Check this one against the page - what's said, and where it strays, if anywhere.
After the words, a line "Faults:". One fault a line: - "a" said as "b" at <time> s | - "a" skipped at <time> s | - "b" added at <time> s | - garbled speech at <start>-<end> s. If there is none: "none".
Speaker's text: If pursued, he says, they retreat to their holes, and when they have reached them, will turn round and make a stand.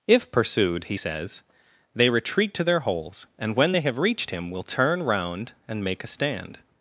If pursued, he says, they retreat to their holes, and when they have reached him, will turn round and make a stand.
Faults:
- "them" said as "him" at 4.3 s